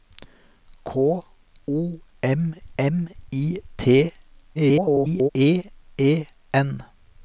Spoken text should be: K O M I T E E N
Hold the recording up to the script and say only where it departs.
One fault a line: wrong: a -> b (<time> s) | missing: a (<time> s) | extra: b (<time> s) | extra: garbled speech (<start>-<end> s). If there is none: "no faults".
extra: M (2.8 s)
extra: garbled speech (4.5-5.3 s)